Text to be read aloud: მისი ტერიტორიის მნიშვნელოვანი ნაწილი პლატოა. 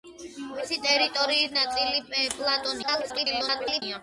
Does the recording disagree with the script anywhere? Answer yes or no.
yes